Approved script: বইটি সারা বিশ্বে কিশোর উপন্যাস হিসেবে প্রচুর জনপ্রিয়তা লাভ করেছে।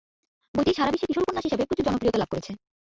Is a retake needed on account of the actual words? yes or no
no